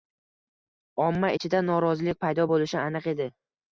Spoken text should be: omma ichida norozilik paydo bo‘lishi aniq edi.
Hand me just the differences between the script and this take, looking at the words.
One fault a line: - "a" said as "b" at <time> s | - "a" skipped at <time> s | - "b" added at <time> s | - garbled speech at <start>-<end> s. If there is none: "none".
none